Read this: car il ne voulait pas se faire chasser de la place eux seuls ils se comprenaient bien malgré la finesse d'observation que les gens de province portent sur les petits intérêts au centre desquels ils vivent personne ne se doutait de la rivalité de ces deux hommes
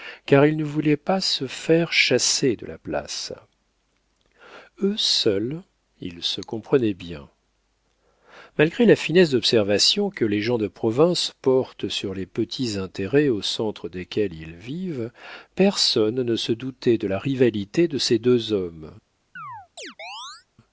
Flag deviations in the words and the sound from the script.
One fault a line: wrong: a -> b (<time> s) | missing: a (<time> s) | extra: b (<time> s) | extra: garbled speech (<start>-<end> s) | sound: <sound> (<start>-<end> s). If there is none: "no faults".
sound: chirp (19.4-20.5 s)